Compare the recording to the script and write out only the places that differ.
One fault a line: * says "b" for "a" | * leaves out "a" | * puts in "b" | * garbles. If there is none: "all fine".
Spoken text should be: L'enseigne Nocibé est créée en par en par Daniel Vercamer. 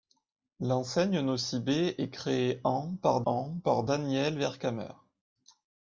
all fine